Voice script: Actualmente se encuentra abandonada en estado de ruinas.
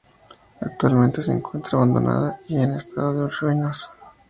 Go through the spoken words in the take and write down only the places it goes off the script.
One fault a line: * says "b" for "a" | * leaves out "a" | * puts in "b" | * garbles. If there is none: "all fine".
* puts in "y"